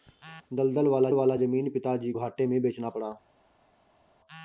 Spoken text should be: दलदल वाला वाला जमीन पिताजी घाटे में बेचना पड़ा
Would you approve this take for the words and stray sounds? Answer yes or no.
yes